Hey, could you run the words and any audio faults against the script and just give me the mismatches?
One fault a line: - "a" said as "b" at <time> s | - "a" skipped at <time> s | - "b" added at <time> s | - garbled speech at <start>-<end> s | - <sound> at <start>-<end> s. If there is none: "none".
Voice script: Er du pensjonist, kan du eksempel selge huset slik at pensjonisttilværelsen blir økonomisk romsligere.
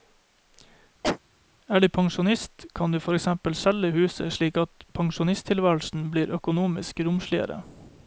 - cough at 1.0-1.2 s
- "for" added at 3.0 s